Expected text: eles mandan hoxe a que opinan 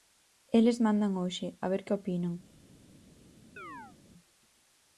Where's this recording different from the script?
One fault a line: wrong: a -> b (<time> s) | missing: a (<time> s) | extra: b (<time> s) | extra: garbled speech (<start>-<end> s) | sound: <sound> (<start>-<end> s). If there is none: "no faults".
extra: ver (1.7 s)
sound: chirp (3.6-4.0 s)